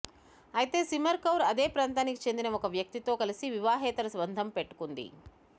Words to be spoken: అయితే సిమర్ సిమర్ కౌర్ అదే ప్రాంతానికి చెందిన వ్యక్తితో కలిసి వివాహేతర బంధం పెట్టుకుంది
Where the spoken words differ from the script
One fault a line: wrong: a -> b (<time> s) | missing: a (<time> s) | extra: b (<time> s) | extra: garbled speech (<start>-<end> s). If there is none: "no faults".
missing: సిమర్ (1.2 s)
extra: ఒక (2.6 s)